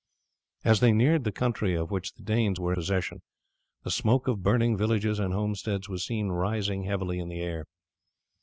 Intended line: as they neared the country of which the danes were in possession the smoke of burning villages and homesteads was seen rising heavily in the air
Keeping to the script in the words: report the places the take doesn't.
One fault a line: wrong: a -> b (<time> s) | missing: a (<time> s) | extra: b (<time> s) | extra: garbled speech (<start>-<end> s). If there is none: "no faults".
missing: in (2.7 s)